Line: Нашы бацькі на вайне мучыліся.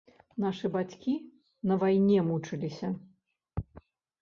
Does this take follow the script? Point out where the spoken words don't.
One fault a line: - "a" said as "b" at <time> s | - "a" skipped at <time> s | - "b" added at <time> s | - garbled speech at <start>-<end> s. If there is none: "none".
none